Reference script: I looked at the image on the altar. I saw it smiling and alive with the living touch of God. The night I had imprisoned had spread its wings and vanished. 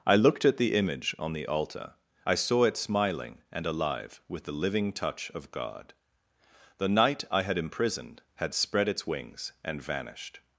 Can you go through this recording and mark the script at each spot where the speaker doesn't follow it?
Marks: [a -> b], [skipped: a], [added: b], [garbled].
I looked at the image on the altar. I saw it smiling and alive with the living touch of God. The night I had imprisoned had spread its wings and vanished.